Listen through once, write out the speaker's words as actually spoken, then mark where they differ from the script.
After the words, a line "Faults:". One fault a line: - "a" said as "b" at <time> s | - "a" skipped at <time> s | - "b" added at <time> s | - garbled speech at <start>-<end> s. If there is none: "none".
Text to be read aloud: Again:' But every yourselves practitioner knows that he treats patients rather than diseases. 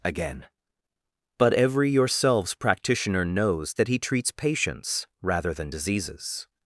Again:' But every yourselves practitioner knows that he treats patients rather than diseases.
Faults:
none